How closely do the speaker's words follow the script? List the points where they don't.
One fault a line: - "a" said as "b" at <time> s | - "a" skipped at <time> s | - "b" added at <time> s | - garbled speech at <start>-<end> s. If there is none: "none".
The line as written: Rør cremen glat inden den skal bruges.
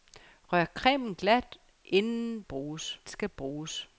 - "den" said as "bruges" at 2.4 s